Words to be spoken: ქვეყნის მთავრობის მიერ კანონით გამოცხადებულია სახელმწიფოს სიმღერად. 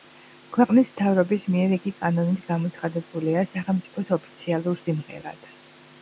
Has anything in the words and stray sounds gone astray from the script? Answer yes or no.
yes